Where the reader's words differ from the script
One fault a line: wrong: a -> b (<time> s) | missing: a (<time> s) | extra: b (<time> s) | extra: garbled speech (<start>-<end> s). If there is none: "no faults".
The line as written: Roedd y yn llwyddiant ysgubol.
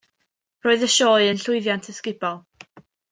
extra: sioe (0.9 s)